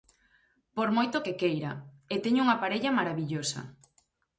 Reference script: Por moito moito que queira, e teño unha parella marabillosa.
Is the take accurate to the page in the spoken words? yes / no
no